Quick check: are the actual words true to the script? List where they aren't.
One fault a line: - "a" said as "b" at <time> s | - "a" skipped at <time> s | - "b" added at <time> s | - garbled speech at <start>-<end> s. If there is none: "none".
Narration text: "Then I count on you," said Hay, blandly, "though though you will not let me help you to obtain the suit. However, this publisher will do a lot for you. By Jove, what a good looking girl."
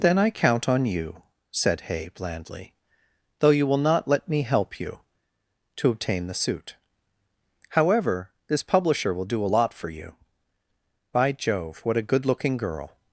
- "though" skipped at 3.5 s